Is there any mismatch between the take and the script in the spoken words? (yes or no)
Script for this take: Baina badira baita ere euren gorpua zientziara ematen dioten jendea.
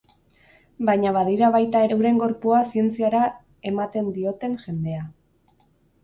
yes